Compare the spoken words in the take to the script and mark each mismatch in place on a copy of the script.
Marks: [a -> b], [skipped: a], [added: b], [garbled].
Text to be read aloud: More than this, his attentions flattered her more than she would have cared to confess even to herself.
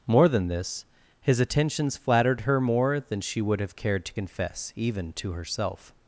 More than this, his attentions flattered her more than she would have cared to confess even to herself.